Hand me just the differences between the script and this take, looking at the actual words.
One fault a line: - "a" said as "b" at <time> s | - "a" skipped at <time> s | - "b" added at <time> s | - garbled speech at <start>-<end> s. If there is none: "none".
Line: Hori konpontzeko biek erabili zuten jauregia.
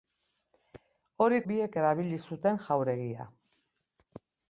- "konpontzeko" skipped at 1.4 s